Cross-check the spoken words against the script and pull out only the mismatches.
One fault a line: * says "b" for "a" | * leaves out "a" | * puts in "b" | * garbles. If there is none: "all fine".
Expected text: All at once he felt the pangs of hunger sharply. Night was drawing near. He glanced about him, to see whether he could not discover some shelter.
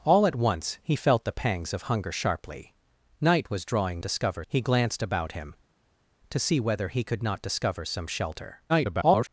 * says "discover" for "near"
* garbles